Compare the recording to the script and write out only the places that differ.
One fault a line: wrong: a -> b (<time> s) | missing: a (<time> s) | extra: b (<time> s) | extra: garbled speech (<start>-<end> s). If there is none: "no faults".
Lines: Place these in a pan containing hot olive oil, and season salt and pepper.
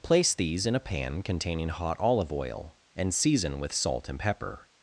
extra: with (3.6 s)